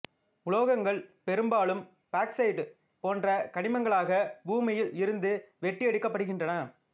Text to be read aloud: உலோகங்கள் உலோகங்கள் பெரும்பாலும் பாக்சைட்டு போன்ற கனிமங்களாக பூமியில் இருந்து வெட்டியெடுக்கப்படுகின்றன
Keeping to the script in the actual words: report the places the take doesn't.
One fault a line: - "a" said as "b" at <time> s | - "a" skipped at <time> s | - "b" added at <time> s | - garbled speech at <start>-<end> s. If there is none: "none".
- "உலோகங்கள்" skipped at 1.0 s